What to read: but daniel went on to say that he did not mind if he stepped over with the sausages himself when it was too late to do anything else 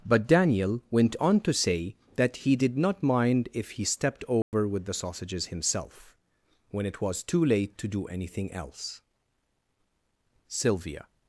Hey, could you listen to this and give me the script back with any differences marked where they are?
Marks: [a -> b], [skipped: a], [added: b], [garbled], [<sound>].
but daniel went on to say that he did not mind if he stepped over [dropout] with the sausages himself when it was too late to do anything else [added: sylvia]